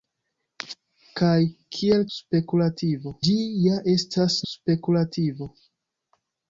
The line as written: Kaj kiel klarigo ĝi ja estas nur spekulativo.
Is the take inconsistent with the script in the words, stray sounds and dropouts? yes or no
yes